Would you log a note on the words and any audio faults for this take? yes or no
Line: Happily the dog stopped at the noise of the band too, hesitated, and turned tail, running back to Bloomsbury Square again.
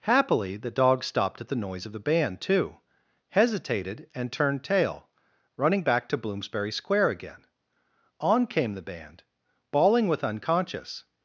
yes